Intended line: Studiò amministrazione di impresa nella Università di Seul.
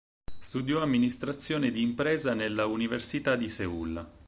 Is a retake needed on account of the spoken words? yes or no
no